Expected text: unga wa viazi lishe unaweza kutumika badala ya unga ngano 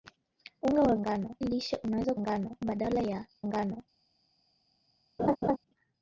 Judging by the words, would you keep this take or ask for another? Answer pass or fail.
fail